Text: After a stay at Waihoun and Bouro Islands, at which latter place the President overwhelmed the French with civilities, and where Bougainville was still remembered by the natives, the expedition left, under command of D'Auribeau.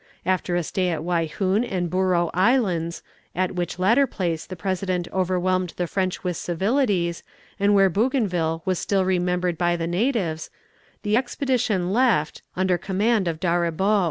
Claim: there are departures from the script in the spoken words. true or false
false